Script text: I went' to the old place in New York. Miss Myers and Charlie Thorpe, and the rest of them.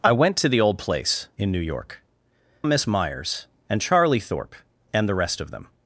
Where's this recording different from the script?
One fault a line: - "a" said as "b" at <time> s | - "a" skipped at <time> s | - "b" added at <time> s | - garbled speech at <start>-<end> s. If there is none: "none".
none